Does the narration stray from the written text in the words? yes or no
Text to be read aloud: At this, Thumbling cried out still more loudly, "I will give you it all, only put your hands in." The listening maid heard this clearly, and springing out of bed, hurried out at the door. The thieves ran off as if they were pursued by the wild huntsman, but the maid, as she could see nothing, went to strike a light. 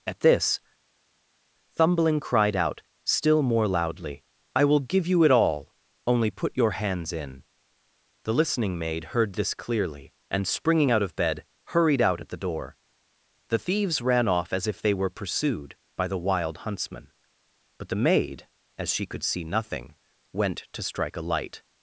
no